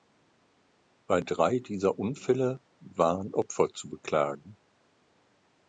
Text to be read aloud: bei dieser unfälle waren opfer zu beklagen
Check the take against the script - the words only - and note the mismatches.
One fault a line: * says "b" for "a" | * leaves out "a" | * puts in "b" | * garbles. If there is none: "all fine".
* puts in "drei"